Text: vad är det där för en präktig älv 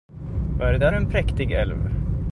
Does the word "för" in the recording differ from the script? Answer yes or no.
yes